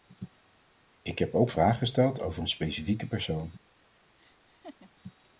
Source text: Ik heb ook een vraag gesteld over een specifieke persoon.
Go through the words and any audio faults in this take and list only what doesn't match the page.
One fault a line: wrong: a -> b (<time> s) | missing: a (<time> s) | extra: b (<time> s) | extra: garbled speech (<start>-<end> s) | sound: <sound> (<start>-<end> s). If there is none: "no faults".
missing: een (1.5 s)
sound: laugh (4.2-4.9 s)